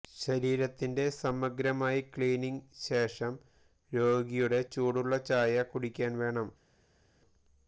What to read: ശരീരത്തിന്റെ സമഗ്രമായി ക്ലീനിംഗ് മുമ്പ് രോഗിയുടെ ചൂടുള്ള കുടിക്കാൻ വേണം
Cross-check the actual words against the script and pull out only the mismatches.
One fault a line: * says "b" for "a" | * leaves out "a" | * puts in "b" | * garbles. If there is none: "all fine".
* says "ശേഷം" for "മുമ്പ്"
* puts in "ചായ"